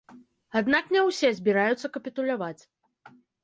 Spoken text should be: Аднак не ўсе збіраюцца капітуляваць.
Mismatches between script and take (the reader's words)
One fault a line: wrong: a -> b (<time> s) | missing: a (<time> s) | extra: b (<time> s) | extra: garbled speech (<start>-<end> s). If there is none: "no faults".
no faults